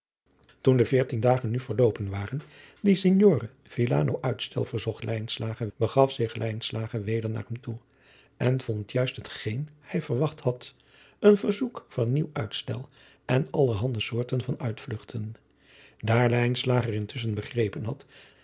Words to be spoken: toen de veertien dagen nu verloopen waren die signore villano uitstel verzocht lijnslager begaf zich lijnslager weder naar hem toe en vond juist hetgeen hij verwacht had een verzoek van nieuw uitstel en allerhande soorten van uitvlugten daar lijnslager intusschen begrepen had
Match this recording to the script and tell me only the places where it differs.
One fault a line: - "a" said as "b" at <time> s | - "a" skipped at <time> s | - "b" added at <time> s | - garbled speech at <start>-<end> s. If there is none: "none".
none